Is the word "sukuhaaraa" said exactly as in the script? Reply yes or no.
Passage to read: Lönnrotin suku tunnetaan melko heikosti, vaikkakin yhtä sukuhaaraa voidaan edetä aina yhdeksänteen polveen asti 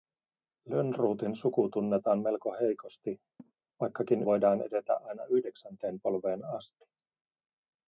no